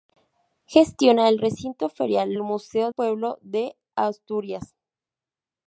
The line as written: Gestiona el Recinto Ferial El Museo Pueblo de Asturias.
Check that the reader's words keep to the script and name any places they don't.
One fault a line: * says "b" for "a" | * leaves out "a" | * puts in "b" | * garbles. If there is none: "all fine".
all fine